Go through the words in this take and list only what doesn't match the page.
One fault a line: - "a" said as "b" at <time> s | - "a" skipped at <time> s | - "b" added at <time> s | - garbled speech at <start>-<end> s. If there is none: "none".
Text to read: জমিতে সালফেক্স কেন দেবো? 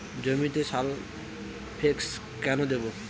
none